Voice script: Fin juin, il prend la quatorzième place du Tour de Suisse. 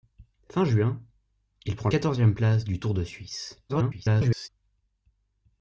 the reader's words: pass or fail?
fail